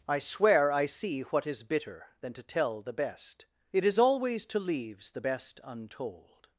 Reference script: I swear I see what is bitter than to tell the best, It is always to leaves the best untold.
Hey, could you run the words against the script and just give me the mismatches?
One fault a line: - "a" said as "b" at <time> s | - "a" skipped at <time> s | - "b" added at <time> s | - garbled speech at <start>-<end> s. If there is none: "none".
none